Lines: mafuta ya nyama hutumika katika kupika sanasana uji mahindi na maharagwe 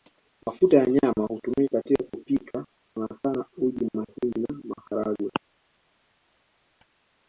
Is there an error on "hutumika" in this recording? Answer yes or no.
no